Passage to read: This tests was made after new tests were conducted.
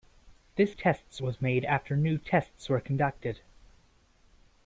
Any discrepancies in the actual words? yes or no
no